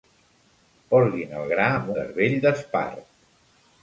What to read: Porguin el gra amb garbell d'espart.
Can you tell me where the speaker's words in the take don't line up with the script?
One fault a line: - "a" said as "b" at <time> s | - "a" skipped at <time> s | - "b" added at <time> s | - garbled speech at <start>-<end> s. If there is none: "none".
none